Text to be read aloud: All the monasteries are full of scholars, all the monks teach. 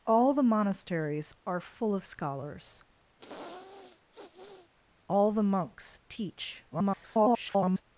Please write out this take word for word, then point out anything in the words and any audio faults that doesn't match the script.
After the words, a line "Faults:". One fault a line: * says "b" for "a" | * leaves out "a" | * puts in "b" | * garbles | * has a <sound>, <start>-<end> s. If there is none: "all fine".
All the monasteries are full of scholars, all the monks teach. [garbled]
Faults:
* has a sniff, 3.2-4.7 s
* garbles